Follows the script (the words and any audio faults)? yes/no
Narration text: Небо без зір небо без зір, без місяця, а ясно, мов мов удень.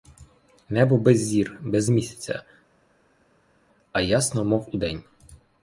no